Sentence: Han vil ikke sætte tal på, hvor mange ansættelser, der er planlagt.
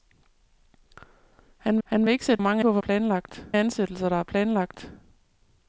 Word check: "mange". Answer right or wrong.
wrong